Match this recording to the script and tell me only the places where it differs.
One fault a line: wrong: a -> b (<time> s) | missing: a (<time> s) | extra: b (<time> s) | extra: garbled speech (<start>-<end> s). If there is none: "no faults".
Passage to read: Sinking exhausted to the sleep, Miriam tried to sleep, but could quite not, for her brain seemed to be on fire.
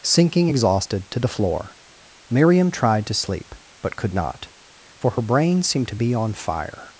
wrong: sleep -> floor (1.3 s)
missing: quite (4.1 s)